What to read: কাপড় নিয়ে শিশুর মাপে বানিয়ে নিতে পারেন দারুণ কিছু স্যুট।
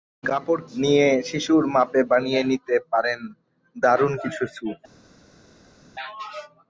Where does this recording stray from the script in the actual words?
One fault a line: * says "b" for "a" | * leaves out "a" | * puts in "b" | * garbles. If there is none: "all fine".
all fine